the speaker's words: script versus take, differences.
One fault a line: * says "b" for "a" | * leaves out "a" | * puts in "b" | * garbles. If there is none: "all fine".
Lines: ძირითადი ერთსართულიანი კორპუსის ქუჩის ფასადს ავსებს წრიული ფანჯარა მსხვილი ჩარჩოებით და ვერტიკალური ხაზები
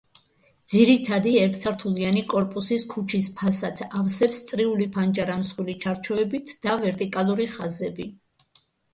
all fine